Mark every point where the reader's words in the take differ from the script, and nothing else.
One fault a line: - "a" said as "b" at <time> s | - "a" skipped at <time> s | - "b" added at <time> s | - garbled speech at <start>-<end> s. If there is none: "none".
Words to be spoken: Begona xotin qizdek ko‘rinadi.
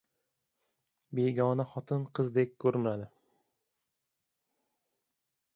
none